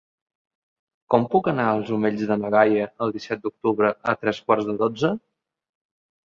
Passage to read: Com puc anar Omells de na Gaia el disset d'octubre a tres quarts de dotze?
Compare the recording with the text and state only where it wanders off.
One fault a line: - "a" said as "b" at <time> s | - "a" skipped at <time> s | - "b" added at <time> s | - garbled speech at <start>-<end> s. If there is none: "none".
- "als" added at 1.7 s